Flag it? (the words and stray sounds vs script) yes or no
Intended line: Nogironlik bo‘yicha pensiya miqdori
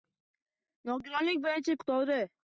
yes